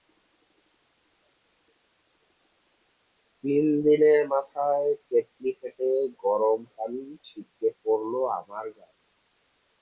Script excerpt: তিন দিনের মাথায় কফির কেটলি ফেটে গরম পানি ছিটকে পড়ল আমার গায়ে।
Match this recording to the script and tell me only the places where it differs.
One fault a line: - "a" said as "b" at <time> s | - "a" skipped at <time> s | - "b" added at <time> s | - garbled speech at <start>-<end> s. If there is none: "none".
- "কফির" skipped at 4.9 s